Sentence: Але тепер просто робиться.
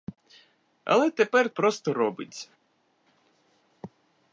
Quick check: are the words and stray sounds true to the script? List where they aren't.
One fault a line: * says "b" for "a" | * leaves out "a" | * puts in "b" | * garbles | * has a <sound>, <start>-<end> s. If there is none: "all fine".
all fine